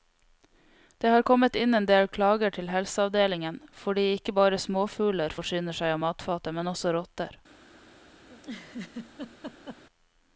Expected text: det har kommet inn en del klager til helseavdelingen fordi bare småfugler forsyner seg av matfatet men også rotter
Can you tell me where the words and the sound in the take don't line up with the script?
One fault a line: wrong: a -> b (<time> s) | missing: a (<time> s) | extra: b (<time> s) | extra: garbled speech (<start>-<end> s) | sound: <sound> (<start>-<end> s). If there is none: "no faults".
extra: ikke (4.1 s)
sound: laugh (8.3-9.8 s)